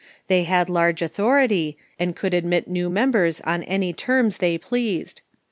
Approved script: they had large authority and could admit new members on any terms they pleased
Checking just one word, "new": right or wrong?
right